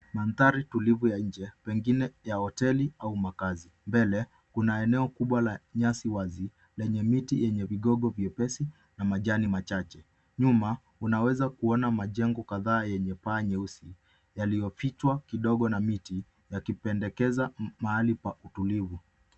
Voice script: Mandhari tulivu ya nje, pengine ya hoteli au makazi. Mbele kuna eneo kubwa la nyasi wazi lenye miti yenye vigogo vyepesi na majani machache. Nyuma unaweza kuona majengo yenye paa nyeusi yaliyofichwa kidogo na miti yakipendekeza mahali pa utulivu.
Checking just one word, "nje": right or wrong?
right